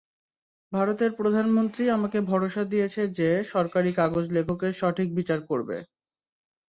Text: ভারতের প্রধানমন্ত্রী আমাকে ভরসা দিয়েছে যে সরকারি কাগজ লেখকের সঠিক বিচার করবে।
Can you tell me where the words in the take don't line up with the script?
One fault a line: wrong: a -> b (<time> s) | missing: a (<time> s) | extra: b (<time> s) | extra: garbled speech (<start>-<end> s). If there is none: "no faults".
no faults